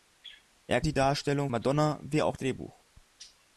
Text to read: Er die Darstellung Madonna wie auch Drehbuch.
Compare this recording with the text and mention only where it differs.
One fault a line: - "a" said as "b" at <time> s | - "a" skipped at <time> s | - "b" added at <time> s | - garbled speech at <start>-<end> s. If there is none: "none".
none